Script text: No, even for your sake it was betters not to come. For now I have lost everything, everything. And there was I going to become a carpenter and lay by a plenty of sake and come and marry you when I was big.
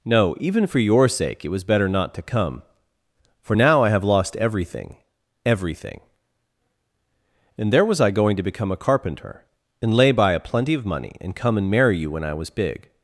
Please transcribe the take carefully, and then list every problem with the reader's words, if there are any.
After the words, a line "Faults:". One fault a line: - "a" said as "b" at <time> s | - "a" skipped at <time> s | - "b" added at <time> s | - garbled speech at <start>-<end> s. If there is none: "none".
No, even for your sake it was better not to come. For now I have lost everything, everything. And there was I going to become a carpenter and lay by a plenty of money and come and marry you when I was big.
Faults:
- "betters" said as "better" at 1.6 s
- "sake" said as "money" at 10.9 s